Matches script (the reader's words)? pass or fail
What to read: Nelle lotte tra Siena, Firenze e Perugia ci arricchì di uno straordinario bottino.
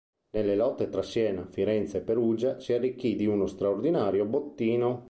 fail